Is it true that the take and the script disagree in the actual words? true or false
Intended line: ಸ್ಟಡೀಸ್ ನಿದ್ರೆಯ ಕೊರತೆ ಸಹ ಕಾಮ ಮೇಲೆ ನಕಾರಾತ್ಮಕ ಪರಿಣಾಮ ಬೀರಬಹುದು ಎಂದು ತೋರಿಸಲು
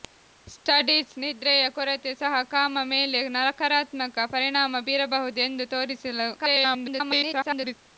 true